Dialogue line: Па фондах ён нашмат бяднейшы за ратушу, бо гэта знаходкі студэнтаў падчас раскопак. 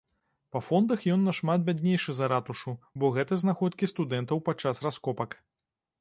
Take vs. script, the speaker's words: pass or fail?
pass